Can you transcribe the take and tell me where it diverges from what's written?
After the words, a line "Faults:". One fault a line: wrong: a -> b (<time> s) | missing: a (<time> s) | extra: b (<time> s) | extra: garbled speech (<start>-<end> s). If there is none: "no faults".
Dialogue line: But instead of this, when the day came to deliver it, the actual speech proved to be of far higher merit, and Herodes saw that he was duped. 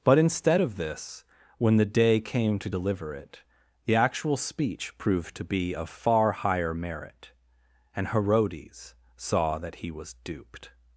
But instead of this, when the day came to deliver it, the actual speech proved to be of far higher merit, and Herodes saw that he was duped.
Faults:
no faults